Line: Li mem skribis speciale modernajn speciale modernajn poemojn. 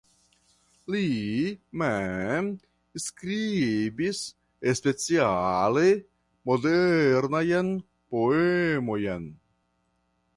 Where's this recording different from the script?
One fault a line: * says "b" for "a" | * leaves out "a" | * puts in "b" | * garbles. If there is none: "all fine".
* leaves out "speciale modernajn"